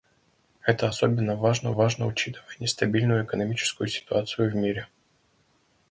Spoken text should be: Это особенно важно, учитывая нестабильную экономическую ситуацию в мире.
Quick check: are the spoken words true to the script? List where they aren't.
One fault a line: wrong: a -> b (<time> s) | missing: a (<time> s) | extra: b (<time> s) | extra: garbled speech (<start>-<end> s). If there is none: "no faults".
extra: важно (1.7 s)